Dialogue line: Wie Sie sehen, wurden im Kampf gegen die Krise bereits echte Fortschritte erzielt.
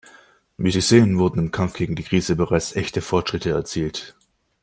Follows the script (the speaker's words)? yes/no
yes